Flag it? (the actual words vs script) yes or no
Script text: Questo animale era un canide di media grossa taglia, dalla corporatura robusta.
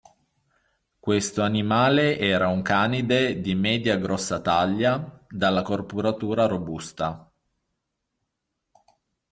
no